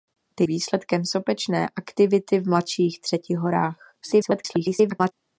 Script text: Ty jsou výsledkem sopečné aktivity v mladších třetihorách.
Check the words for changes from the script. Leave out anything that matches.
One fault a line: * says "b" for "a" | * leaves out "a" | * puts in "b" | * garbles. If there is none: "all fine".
* leaves out "jsou"
* garbles